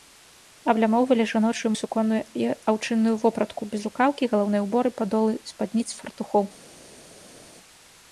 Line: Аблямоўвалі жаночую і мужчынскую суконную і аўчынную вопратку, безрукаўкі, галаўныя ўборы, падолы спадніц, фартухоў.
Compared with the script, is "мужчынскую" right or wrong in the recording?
wrong